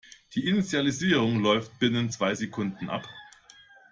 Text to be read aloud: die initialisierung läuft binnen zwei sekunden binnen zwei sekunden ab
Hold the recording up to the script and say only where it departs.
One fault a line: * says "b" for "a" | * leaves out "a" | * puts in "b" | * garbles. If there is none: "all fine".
* leaves out "binnen zwei sekunden"